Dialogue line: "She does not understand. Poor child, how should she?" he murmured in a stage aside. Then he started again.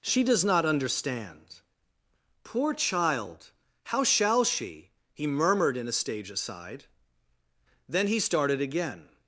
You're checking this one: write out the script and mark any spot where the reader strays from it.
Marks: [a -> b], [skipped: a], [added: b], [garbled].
"She does not understand. Poor child, how [should -> shall] she?" he murmured in a stage aside. Then he started again.